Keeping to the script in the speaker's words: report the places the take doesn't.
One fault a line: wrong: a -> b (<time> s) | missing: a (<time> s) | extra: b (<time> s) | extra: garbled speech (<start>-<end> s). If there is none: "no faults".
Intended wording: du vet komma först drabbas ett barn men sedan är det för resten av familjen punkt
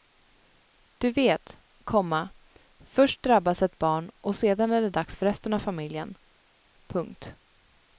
wrong: men -> och (4.2 s)
extra: dags (4.9 s)